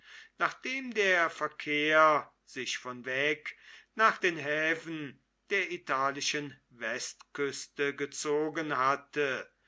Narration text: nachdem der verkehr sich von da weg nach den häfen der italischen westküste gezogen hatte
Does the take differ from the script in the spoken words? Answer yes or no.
yes